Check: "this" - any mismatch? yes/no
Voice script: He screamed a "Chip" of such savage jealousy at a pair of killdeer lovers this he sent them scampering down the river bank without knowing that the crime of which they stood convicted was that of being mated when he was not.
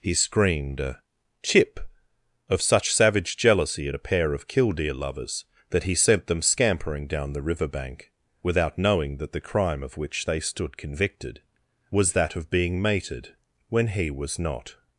yes